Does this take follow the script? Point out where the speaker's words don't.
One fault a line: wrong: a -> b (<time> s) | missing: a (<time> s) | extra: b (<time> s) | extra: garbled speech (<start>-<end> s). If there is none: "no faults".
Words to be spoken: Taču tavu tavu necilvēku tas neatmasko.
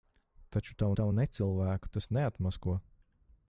no faults